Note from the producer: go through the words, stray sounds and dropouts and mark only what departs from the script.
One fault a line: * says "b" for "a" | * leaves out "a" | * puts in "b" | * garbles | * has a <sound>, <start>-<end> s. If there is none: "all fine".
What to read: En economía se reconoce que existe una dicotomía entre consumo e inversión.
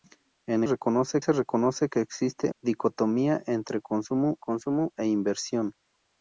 * says "reconoce" for "economía"
* leaves out "una"
* puts in "consumo"